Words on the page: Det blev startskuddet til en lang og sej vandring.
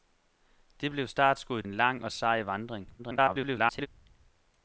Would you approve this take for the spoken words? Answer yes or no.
no